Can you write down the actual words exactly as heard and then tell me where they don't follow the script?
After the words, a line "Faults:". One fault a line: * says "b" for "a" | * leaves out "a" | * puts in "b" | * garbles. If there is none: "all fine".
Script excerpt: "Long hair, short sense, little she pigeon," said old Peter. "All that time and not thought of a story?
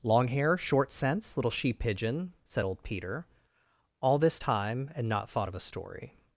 "Long hair, short sense, little she pigeon," said old Peter. "All this time and not thought of a story?
Faults:
* says "this" for "that"